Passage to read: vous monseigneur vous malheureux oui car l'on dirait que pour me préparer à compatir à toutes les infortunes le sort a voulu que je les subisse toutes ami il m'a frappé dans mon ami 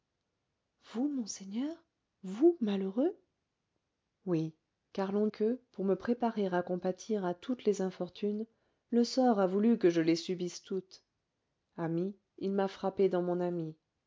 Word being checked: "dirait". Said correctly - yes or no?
no